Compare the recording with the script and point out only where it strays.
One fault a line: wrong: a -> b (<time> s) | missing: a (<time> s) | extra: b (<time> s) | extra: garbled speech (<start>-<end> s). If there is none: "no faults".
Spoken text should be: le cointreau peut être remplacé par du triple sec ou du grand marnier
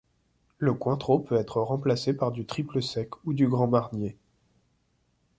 no faults